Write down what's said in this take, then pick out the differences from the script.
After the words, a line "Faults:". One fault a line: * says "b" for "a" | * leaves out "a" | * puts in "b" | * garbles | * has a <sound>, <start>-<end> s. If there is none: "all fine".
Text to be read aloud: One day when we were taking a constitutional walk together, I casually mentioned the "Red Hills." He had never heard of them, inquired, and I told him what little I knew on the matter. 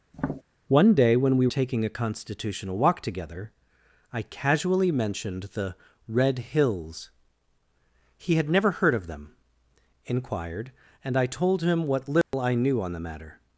One day when we taking a constitutional walk together, I casually mentioned the "Red Hills." He had never heard of them, inquired, and I told him what little I knew on the matter.
Faults:
* has a tap, 0.1-0.4 s
* leaves out "were"
* has a dropout, 12.2-12.3 s